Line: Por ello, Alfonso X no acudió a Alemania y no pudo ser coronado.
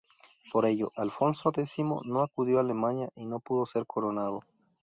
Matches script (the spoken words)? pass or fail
pass